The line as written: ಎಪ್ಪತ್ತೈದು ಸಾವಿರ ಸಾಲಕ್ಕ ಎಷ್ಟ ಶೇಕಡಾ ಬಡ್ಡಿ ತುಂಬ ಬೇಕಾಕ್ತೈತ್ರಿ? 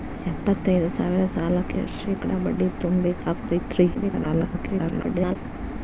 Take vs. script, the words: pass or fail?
fail